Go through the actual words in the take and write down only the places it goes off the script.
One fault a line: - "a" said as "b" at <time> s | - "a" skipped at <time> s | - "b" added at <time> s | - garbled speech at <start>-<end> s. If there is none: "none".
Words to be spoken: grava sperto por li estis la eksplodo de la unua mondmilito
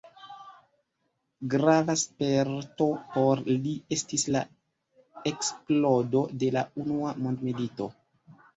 none